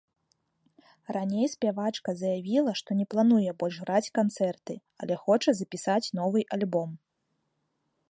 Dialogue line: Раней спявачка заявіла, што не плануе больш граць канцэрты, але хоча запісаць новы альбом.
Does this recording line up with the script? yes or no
yes